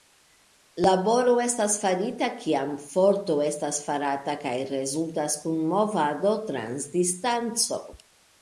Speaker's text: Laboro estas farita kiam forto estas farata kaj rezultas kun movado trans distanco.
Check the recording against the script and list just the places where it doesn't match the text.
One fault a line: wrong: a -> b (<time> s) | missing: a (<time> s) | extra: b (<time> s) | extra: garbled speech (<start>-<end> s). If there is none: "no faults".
no faults